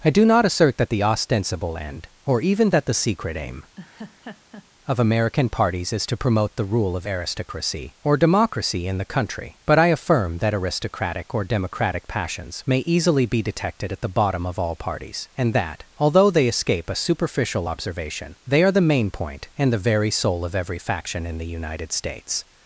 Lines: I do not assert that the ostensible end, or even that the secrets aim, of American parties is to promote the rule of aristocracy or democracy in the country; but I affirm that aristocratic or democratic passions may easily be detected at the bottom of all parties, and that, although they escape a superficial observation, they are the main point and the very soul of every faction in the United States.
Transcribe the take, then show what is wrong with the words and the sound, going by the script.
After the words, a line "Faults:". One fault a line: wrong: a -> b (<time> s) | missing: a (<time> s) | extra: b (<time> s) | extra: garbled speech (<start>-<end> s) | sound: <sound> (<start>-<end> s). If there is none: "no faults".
I do not assert that the ostensible end, or even that the secret aim, of American parties is to promote the rule of aristocracy or democracy in the country; but I affirm that aristocratic or democratic passions may easily be detected at the bottom of all parties, and that, although they escape a superficial observation, they are the main point and the very soul of every faction in the United States.
Faults:
wrong: secrets -> secret (2.9 s)
sound: laugh (3.8-4.7 s)